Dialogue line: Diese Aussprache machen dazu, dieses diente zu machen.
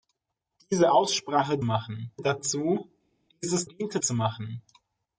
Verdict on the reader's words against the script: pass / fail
pass